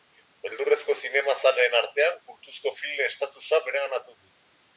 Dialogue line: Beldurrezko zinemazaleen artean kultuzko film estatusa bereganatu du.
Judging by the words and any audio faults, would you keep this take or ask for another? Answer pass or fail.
pass